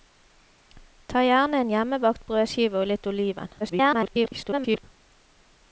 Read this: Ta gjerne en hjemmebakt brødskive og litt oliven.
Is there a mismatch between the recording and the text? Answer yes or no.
yes